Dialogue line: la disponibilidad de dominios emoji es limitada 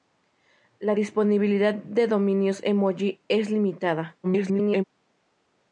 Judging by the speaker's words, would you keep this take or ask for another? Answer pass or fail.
fail